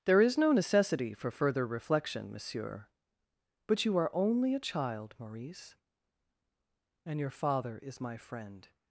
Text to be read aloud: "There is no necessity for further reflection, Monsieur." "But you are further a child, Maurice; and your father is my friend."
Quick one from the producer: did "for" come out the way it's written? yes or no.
yes